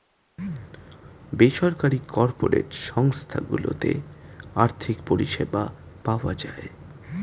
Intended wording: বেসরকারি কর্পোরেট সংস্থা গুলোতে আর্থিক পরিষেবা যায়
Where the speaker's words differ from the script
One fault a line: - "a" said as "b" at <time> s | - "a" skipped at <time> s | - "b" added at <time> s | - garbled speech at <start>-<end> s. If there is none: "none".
- "পাওয়া" added at 6.0 s